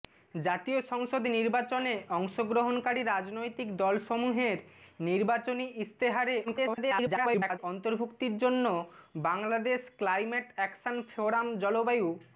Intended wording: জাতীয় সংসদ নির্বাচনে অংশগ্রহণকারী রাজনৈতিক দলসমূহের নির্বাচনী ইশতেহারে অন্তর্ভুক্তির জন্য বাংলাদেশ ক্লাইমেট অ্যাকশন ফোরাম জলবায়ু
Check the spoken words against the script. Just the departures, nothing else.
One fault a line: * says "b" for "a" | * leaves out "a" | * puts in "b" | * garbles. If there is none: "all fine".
* garbles